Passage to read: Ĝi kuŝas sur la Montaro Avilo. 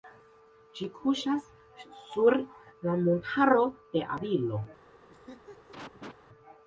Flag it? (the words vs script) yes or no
yes